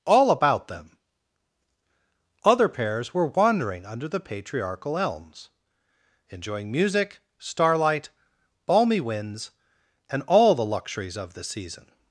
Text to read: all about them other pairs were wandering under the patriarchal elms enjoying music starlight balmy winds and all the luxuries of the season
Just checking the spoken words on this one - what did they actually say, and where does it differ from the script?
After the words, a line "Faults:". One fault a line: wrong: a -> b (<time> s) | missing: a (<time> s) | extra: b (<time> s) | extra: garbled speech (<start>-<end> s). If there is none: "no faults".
all about them other pairs were wandering under the patriarchal elms enjoying music starlight balmy winds and all the luxuries of the season
Faults:
no faults